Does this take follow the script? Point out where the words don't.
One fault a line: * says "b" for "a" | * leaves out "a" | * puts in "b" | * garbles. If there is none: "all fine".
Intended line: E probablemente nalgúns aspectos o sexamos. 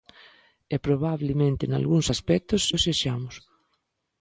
all fine